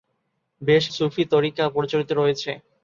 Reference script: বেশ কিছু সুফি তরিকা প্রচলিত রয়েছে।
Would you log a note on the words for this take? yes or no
yes